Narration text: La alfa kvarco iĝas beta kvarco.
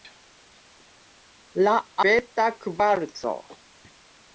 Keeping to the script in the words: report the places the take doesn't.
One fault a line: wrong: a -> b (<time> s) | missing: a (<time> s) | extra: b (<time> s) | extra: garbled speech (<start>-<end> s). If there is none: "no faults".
missing: alfa kvarco iĝas (1.8 s)